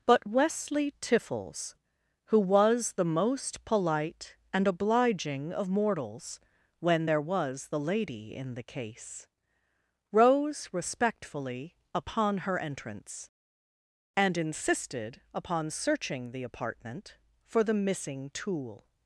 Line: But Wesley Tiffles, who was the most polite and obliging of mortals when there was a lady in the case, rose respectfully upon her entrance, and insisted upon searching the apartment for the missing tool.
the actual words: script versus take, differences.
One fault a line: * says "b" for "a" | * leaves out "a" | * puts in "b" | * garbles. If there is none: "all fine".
* says "the" for "a"